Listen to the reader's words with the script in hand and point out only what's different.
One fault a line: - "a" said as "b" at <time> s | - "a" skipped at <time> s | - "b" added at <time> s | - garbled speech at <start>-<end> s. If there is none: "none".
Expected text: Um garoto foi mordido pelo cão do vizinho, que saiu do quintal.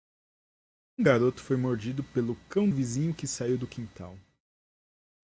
- "do" skipped at 2.7 s